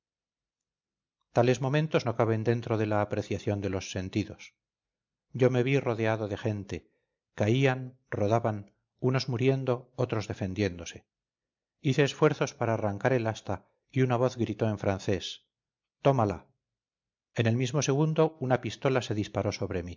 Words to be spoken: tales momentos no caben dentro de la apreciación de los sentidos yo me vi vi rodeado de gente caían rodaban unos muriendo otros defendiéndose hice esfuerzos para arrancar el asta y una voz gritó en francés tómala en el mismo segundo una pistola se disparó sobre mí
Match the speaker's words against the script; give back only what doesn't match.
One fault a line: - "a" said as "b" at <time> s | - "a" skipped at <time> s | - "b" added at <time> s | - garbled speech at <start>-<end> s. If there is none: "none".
- "vi" skipped at 5.8 s